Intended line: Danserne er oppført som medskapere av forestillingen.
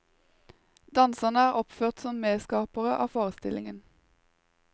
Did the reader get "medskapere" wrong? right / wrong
right